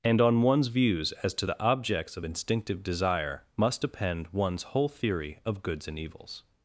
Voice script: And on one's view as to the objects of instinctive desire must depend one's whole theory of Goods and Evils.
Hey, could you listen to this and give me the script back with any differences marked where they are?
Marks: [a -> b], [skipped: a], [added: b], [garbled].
And on one's [view -> views] as to the objects of instinctive desire must depend one's whole theory of Goods and Evils.